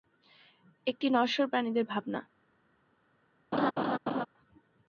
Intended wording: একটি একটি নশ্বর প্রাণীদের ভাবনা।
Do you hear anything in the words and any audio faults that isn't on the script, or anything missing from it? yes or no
yes